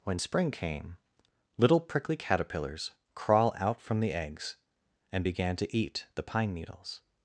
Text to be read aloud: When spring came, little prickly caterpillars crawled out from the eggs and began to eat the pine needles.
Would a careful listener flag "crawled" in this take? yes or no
yes